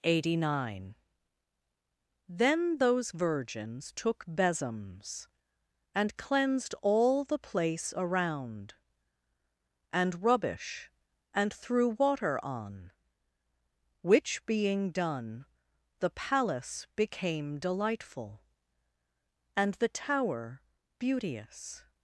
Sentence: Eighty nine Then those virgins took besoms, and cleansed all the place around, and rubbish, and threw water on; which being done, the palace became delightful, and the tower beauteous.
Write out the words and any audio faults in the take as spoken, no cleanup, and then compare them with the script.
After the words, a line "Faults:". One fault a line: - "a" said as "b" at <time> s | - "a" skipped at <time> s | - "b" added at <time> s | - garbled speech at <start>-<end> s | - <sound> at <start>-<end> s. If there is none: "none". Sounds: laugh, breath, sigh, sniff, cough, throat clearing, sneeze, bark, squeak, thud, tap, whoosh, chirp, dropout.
Eighty nine Then those virgins took besoms, and cleansed all the place around, and rubbish, and threw water on; which being done, the palace became delightful, and the tower beauteous.
Faults:
none